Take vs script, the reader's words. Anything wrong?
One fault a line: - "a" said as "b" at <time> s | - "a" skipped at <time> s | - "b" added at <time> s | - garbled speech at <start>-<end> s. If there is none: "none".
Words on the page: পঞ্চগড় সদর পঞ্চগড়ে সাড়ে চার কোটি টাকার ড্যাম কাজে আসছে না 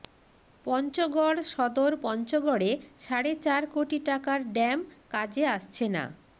none